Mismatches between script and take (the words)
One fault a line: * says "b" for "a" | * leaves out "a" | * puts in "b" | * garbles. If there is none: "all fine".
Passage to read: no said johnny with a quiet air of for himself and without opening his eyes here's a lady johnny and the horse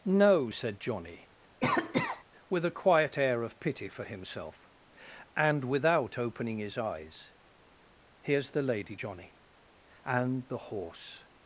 * puts in "pity"
* says "the" for "a"